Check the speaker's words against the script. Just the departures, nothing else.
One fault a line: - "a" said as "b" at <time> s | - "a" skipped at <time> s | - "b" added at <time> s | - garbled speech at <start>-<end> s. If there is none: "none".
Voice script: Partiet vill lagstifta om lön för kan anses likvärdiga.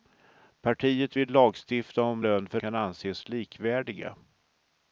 none